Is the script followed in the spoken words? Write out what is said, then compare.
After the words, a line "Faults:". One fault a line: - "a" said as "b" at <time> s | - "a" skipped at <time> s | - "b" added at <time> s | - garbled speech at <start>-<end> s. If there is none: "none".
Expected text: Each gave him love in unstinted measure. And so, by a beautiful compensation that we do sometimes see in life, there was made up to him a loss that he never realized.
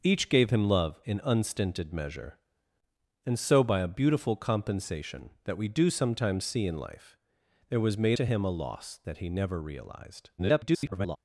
Each gave him love in unstinted measure. And so, by a beautiful compensation that we do sometimes see in life, there was made to him a loss that he never realized. [garbled]
Faults:
- "up" skipped at 8.2 s
- garbled speech at 10.4-11.2 s